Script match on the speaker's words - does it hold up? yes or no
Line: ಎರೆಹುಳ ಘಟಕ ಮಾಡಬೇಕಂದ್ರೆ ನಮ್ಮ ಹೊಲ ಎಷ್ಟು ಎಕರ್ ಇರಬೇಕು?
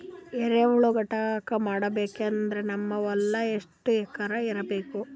yes